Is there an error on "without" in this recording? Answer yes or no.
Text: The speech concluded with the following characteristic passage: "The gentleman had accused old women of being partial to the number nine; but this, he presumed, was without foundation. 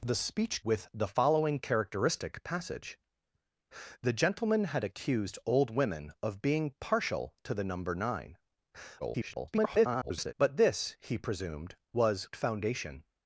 yes